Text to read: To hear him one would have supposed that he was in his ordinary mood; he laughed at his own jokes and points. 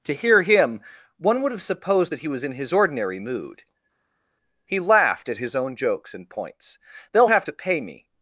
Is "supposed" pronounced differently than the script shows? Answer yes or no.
no